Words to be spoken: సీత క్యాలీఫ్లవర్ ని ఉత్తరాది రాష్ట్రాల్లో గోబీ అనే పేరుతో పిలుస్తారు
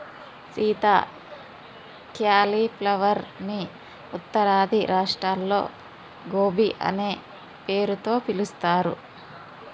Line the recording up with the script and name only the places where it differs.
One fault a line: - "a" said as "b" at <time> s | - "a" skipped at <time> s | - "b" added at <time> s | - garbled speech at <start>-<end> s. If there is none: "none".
none